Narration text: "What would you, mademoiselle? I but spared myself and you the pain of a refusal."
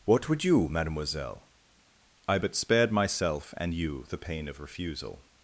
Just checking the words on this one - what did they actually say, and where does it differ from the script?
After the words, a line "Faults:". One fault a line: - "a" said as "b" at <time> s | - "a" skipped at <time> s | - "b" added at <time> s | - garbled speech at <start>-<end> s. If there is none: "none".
"What would you, mademoiselle? I but spared myself and you the pain of refusal."
Faults:
- "a" skipped at 4.6 s